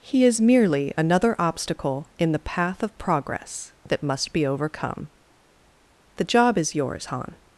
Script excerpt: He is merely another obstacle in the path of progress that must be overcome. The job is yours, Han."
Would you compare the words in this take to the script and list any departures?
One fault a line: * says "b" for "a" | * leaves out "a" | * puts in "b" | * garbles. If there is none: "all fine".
all fine